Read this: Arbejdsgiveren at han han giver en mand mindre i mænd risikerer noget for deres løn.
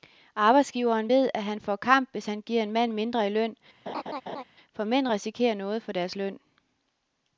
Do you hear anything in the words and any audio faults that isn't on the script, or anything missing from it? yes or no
yes